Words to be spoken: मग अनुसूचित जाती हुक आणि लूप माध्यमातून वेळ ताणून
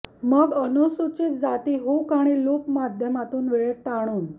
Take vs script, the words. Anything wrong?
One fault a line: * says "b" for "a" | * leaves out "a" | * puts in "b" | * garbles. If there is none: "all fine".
all fine